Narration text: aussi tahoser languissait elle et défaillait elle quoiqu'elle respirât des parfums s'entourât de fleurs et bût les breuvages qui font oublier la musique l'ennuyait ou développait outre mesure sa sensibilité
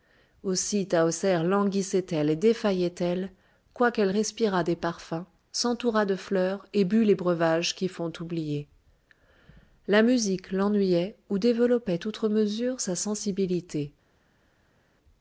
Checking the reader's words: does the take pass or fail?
pass